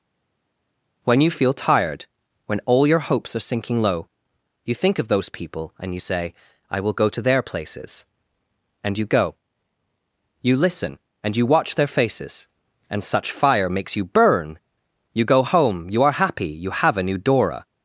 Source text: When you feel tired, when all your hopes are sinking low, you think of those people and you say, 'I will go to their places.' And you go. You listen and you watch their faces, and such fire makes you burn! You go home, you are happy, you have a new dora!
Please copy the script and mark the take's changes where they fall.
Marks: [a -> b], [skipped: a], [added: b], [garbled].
When you feel tired, when all your hopes are sinking low, you think of those people and you say, 'I will go to their places.' And you go. You listen and you watch their faces, and such fire makes you burn! You go home, you are happy, you have a new dora!